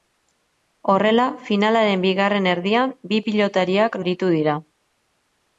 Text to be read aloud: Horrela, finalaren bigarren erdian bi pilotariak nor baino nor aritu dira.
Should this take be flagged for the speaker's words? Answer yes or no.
yes